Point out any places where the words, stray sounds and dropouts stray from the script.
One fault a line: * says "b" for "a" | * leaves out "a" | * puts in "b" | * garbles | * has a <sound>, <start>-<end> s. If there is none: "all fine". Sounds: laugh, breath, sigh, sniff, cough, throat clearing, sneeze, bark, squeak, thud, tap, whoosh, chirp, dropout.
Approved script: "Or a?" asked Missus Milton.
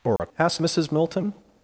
* has a dropout, 0.2-0.2 s